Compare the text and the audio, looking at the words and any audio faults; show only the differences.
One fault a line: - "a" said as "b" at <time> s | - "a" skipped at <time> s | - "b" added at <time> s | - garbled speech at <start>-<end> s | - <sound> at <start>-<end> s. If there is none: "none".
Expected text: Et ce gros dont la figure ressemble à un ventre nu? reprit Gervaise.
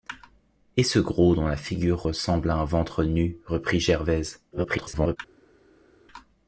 - garbled speech at 4.5-5.2 s